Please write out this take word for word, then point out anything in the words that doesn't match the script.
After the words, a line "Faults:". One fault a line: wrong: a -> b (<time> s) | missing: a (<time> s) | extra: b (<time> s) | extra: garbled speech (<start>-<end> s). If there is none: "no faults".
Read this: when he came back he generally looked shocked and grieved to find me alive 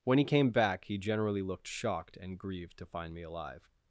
when he came back he generally looked shocked and grieved to find me alive
Faults:
no faults